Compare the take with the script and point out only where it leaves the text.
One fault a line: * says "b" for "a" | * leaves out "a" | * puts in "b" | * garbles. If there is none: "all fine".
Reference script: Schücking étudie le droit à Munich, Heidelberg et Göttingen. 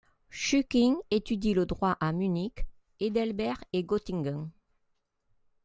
all fine